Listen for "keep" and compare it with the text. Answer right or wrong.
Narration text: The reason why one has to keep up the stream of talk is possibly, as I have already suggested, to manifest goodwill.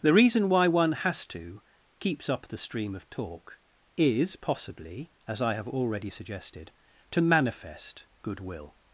wrong